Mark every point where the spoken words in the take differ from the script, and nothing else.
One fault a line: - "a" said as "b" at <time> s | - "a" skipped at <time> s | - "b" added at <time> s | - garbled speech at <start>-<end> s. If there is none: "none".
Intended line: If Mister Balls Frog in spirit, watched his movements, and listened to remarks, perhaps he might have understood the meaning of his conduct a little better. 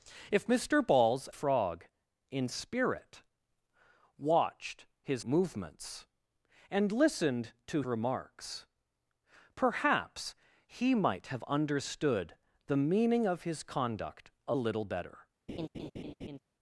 none